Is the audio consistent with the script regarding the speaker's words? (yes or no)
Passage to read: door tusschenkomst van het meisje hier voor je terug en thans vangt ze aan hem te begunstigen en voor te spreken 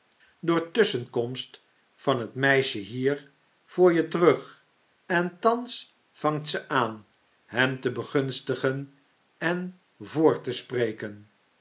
yes